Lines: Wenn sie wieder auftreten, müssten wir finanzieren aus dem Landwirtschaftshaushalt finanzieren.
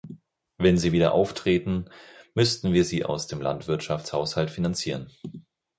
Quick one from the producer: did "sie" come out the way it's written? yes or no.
yes